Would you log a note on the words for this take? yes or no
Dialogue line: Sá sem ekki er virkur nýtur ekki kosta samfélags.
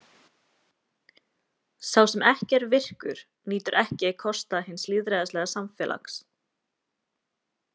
yes